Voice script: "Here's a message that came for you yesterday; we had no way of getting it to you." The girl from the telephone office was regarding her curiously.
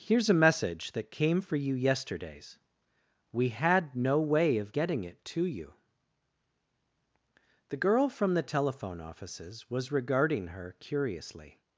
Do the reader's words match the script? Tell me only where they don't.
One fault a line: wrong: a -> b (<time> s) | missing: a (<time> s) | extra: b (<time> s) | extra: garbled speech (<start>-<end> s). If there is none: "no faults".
wrong: yesterday -> yesterdays (1.8 s)
wrong: office -> offices (9.0 s)